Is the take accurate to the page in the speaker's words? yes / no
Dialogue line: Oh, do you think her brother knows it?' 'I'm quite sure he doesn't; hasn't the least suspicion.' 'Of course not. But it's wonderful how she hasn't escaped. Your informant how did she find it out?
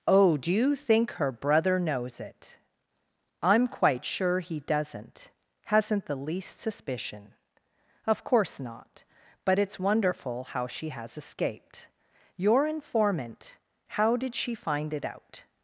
no